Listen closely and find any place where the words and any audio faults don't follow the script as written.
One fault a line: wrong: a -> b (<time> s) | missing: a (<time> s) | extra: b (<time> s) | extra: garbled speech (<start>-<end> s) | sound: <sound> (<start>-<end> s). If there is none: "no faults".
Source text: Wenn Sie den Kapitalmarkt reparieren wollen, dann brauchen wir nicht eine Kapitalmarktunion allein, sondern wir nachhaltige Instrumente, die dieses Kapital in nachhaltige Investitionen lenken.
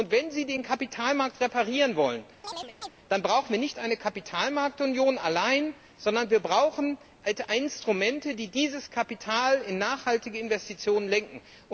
sound: chirp (2.4-2.9 s)
wrong: nachhaltige -> brauchen (6.4 s)